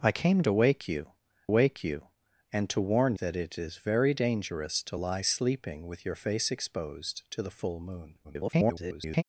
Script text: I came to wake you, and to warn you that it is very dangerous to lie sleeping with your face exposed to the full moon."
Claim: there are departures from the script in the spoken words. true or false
true